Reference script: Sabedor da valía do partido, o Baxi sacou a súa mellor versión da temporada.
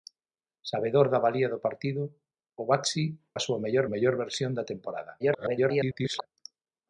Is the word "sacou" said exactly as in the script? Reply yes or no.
no